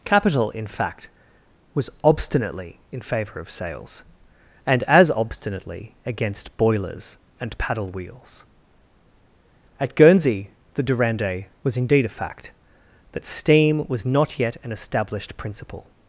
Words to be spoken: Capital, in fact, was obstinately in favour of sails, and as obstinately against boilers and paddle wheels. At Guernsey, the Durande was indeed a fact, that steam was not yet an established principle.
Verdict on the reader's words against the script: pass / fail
pass